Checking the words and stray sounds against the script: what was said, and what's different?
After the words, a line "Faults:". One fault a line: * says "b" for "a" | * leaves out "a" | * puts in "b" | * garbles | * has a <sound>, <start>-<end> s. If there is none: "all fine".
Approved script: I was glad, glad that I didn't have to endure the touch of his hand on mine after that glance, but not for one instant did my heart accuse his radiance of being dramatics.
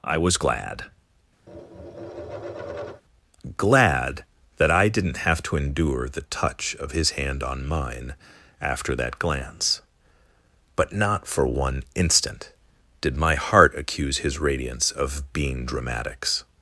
I was glad, glad that I didn't have to endure the touch of his hand on mine after that glance, but not for one instant did my heart accuse his radiance of being dramatics.
Faults:
* has a tap, 1.5-3.0 s